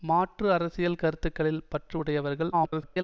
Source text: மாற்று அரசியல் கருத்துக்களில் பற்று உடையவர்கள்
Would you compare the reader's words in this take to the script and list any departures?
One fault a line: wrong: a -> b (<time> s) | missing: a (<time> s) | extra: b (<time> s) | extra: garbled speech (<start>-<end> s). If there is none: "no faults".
extra: garbled speech (2.5-3.0 s)